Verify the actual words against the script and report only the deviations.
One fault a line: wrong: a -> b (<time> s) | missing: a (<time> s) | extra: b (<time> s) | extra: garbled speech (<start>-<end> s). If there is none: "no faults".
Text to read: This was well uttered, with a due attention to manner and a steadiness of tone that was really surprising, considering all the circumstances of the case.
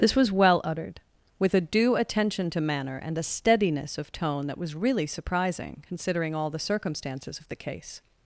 no faults